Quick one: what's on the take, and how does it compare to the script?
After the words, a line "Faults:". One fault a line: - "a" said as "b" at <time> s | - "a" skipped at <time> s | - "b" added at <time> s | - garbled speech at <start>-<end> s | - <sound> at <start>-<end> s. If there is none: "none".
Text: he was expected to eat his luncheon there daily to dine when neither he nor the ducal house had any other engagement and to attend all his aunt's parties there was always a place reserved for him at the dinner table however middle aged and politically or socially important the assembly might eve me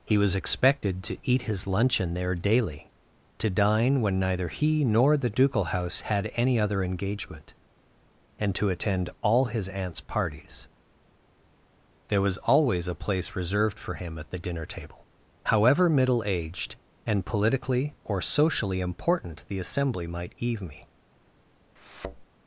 he was expected to eat his luncheon there daily to dine when neither he nor the ducal house had any other engagement and to attend all his aunt's parties there was always a place reserved for him at the dinner table however middle aged and politically or socially important the assembly might eve me
Faults:
- thud at 21.8-22.3 s